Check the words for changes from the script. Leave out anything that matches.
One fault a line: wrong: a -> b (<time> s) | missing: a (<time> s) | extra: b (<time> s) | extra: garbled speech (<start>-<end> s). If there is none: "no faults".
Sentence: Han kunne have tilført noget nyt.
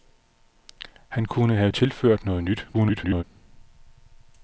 extra: garbled speech (2.7-3.2 s)